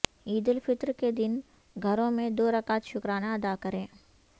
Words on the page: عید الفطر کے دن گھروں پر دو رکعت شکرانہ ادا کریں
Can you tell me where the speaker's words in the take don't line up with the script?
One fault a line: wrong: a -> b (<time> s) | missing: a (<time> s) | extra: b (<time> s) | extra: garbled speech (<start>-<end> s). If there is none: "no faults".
wrong: پر -> میں (2.1 s)